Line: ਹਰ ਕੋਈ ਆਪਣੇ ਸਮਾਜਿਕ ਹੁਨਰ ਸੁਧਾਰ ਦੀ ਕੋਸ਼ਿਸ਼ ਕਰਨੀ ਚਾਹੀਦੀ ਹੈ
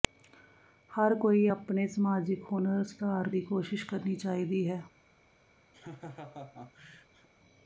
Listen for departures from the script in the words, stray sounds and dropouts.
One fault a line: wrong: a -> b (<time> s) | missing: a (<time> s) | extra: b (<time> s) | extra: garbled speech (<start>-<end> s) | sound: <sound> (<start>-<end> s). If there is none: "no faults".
sound: laugh (5.7-7.3 s)